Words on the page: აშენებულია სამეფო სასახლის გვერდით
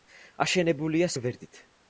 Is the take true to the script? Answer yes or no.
no